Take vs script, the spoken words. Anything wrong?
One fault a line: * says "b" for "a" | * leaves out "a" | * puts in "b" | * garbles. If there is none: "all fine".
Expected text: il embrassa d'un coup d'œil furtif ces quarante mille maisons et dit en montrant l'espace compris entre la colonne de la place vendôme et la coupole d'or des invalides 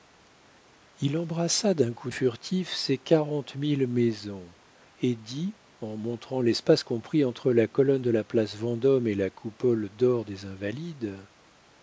* leaves out "d'œil"